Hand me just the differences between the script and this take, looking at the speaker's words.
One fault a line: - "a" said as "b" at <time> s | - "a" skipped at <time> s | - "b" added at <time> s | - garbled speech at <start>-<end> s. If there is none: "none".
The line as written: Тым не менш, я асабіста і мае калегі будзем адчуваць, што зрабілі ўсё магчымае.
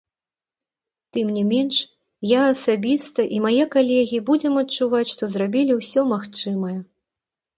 none